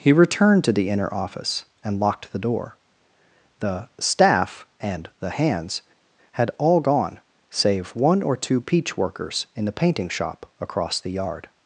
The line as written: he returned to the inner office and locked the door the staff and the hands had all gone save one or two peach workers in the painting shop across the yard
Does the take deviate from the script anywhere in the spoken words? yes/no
no